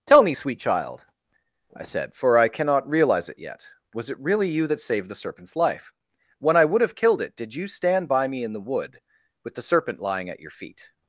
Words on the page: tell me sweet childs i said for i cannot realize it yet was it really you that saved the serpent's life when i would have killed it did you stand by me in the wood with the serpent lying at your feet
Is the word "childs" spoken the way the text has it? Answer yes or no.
no